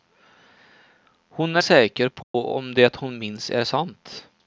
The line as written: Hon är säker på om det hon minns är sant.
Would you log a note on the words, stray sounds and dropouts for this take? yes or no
yes